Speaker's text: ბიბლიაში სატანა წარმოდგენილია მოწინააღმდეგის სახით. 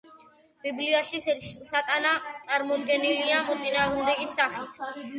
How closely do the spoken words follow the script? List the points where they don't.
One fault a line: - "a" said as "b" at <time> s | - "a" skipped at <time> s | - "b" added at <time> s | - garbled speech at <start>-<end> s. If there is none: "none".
none